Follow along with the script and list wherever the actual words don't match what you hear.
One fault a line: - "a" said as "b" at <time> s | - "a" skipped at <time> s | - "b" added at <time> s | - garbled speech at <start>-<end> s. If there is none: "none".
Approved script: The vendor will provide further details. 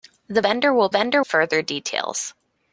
- "provide" said as "vendor" at 0.9 s